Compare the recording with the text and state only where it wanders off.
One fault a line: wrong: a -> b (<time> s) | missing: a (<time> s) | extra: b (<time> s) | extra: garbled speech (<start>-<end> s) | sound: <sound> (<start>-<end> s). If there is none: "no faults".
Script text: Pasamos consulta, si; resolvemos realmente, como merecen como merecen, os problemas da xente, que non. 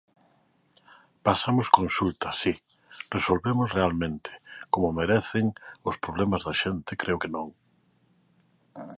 missing: como merecen (5.5 s)
extra: creo (7.0 s)